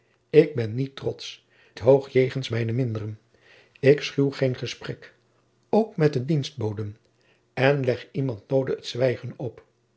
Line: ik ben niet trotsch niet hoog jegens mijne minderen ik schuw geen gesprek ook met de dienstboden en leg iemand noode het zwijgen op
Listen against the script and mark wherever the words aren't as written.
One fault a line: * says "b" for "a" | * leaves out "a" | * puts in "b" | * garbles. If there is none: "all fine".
* leaves out "niet"